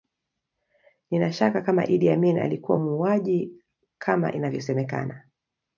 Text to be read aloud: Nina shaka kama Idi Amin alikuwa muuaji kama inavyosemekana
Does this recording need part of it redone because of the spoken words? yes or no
no